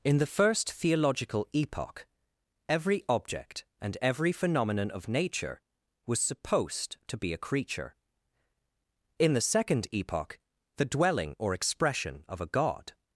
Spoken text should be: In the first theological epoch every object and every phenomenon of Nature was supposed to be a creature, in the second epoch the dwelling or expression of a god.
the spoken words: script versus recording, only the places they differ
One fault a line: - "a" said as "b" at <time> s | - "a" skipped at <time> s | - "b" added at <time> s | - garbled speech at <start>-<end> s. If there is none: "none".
none